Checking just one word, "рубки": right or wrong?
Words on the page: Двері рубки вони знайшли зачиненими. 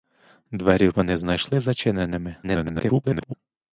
wrong